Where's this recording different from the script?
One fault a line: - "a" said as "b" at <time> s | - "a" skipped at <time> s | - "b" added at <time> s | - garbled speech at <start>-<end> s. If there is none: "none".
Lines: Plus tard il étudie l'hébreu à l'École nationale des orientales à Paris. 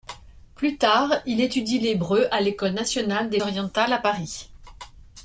none